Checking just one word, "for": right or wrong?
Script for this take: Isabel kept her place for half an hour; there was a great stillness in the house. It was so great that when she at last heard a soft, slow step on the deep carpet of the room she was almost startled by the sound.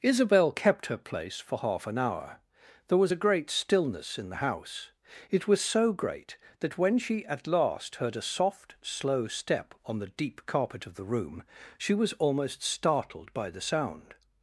right